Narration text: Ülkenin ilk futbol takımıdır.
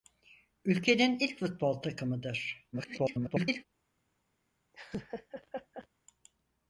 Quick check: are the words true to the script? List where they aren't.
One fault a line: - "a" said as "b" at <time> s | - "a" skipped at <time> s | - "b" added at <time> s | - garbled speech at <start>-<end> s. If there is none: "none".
- garbled speech at 2.7-3.6 s